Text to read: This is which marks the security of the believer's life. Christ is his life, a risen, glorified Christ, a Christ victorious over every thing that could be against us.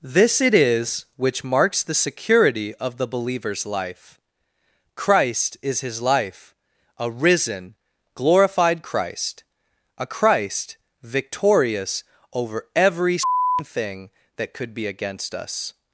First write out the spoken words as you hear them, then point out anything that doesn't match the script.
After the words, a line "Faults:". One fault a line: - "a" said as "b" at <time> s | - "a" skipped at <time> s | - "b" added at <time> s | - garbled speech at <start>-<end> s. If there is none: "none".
This it is which marks the security of the believer's life. Christ is his life, a risen, glorified Christ, a Christ victorious over every thing that could be against us.
Faults:
- "it" added at 0.4 s